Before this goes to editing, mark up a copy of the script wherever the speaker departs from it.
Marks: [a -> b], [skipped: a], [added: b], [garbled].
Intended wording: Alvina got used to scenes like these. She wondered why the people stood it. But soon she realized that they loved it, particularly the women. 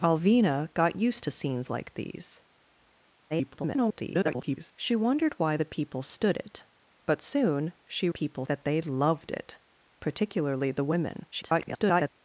Alvina got used to scenes like these. [garbled] She wondered why the people stood it. But soon she [realized -> people] that they loved it, particularly the women. [garbled]